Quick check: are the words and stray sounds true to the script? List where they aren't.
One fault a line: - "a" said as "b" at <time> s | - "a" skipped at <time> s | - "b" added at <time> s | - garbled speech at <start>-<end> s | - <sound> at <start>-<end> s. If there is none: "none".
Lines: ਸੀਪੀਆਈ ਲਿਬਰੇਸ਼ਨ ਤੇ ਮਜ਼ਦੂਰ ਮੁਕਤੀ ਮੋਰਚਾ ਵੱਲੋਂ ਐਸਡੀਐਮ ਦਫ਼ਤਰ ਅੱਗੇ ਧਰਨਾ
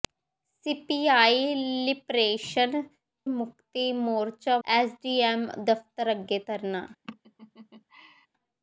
- "ਤੇ ਮਜ਼ਦੂਰ" skipped at 2.8 s
- "ਵੱਲੋਂ" skipped at 4.6 s
- laugh at 7.0-8.3 s